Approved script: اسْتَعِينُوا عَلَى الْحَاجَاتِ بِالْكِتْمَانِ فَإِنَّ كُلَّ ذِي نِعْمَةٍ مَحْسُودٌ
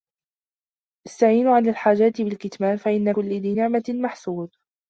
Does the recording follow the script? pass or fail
pass